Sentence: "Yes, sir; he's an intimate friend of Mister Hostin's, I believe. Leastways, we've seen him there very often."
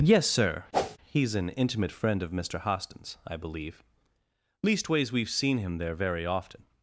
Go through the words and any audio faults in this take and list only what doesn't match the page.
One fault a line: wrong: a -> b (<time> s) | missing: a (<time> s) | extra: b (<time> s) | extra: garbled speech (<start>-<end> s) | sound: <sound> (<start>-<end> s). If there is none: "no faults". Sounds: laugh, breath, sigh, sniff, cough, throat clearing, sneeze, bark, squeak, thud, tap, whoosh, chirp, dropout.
sound: whoosh (0.7-1.0 s)